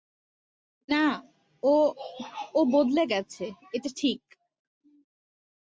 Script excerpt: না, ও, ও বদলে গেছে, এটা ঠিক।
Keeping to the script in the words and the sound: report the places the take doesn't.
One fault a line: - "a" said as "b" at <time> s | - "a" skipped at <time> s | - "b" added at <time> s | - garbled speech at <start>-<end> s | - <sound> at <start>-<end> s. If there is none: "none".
none